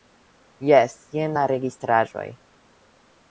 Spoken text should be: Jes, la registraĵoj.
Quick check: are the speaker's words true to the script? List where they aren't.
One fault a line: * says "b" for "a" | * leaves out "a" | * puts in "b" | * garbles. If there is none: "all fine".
* puts in "jen"